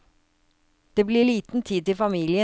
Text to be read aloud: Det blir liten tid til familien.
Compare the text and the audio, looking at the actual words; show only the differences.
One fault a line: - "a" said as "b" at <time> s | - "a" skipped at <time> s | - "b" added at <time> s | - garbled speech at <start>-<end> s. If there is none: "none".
none